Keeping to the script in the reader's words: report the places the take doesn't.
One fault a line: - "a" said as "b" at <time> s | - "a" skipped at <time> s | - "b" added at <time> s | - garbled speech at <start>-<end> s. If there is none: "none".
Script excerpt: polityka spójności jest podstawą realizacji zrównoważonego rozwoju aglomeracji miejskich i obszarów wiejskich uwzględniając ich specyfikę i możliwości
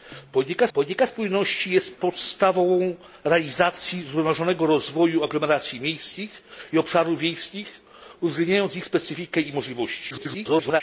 - "polityka" added at 0.7 s
- garbled speech at 10.1-10.8 s